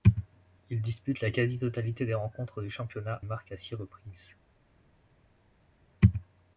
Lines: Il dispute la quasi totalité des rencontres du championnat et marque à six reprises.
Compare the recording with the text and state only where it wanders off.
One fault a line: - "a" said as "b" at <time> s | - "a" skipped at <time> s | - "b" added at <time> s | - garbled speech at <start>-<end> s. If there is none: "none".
- "et" skipped at 3.2 s